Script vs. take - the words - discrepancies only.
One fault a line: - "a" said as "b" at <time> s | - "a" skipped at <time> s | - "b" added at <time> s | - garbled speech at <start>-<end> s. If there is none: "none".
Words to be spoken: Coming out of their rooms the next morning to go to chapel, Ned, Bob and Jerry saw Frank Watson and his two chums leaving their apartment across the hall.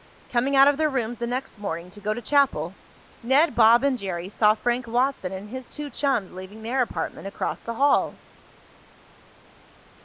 none